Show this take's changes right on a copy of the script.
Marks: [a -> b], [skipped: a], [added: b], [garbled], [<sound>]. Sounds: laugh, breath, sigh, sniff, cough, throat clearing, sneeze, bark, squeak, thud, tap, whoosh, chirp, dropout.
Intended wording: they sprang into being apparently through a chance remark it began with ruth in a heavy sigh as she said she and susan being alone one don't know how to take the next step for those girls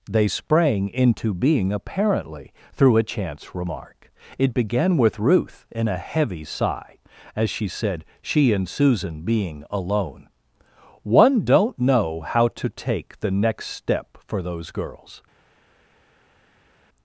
they sprang into being apparently through a chance remark it began with ruth in a heavy sigh as she said she and susan being alone one don't know how to take the next step for those girls